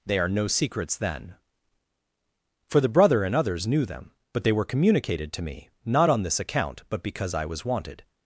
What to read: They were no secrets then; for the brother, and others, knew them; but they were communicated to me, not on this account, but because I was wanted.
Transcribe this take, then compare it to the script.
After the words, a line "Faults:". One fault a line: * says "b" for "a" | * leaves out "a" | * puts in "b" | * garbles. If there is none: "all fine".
They are no secrets then; for the brother, and others, knew them; but they were communicated to me, not on this account, but because I was wanted.
Faults:
* says "are" for "were"